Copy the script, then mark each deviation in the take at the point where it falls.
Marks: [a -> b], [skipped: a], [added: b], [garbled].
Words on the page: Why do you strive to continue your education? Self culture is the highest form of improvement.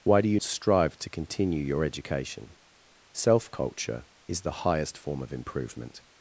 Why do you strive to continue your education? Self culture is the highest form of improvement.